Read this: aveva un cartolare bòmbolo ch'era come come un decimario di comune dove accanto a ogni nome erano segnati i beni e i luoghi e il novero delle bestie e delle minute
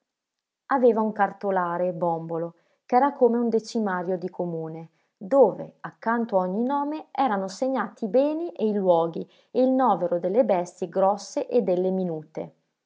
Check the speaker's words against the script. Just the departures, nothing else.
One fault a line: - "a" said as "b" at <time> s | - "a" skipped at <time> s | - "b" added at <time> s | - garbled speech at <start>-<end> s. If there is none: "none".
- "come" skipped at 3.4 s
- "grosse" added at 10.9 s